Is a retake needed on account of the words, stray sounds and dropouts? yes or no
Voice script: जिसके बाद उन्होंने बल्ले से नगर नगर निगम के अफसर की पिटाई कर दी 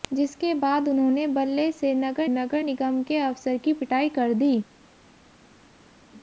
no